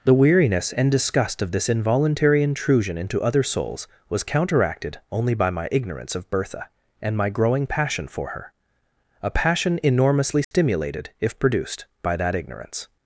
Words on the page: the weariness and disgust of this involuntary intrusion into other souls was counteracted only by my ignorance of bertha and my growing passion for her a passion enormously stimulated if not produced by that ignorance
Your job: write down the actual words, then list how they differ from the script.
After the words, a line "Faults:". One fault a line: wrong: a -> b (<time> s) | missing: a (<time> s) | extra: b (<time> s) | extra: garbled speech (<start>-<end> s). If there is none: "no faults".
the weariness and disgust of this involuntary intrusion into other souls was counteracted only by my ignorance of bertha and my growing passion for her a passion enormously stimulated if produced by that ignorance
Faults:
missing: not (11.4 s)